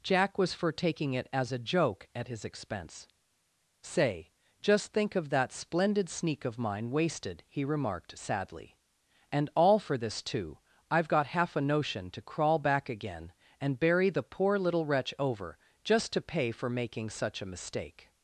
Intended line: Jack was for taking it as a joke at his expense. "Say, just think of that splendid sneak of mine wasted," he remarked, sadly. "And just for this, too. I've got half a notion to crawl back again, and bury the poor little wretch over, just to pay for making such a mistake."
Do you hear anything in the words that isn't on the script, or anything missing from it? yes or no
yes